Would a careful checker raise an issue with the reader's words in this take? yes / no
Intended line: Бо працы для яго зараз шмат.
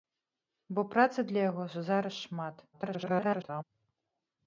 yes